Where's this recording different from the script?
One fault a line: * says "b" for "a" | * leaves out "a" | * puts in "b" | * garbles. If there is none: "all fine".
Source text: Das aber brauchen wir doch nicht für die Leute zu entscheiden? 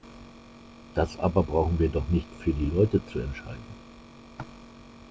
all fine